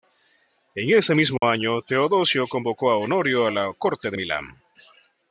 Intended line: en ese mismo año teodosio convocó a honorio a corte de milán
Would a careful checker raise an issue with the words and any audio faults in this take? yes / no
yes